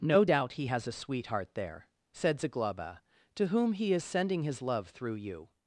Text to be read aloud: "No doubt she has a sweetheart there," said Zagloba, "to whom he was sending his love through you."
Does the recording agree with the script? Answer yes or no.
no